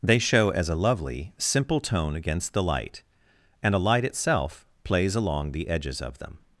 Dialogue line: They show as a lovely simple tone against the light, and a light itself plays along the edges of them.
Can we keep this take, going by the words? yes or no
yes